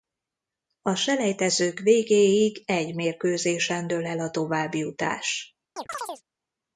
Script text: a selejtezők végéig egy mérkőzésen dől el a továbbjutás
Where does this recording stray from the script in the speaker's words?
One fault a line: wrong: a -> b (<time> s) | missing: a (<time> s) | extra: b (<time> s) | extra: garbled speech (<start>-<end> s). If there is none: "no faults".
no faults